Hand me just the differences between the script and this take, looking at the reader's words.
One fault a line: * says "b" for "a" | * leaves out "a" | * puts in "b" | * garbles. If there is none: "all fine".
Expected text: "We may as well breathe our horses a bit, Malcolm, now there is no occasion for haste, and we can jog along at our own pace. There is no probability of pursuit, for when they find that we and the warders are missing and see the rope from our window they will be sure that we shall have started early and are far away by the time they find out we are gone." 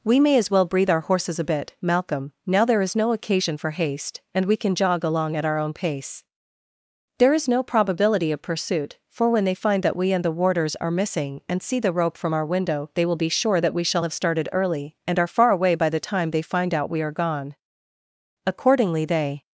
* puts in "Accordingly they"